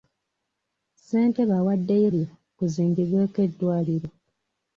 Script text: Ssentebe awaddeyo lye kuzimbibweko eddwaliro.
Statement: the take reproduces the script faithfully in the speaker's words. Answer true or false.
true